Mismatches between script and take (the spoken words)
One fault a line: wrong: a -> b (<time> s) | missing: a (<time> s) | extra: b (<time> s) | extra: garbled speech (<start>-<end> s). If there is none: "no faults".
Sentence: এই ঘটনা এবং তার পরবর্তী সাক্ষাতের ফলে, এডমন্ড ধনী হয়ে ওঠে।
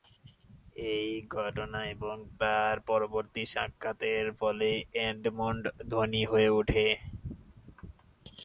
no faults